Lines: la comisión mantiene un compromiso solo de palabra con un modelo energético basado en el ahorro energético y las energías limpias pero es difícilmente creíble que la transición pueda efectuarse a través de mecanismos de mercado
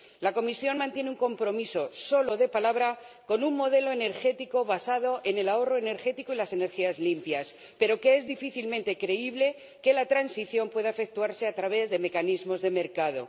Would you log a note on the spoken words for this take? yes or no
no